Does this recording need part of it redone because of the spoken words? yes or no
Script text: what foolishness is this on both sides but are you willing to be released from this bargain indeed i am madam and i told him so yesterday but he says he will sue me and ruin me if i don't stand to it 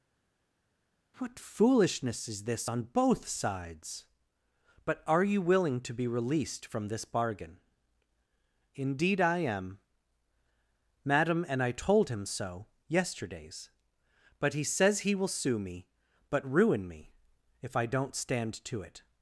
yes